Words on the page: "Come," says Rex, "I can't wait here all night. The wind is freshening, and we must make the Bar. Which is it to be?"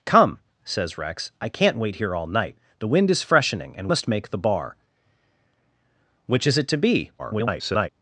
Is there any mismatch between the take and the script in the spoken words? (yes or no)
yes